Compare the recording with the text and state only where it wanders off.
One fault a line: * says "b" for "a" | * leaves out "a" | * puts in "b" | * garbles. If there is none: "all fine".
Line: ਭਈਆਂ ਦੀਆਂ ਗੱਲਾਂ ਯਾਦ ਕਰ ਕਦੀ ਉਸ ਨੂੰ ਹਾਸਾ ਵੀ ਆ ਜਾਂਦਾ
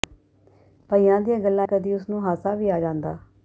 * leaves out "ਯਾਦ ਕਰ"